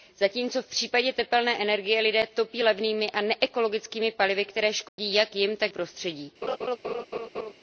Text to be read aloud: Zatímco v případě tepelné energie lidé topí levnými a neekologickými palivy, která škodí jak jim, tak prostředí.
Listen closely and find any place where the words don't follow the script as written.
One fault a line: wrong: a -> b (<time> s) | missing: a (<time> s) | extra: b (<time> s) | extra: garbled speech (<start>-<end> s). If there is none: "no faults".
no faults